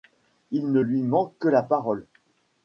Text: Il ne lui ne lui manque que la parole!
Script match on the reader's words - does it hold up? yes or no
no